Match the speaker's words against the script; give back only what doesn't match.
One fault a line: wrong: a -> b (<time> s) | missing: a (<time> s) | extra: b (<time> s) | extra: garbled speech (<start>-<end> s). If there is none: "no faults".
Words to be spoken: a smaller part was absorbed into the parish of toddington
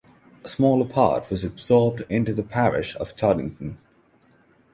no faults